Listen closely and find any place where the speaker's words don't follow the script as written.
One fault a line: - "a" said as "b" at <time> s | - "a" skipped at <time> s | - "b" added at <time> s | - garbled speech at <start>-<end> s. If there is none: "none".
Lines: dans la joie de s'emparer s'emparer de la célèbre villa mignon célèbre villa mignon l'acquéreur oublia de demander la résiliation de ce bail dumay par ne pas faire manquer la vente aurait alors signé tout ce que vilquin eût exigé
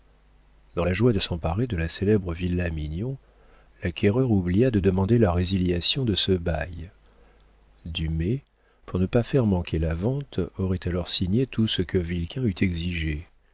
- "s'emparer" skipped at 1.7 s
- "célèbre villa mignon" skipped at 3.2 s
- "par" said as "pour" at 8.8 s